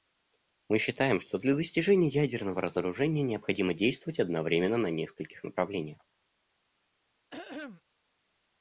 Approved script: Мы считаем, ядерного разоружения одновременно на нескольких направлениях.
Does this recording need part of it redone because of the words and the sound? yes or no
yes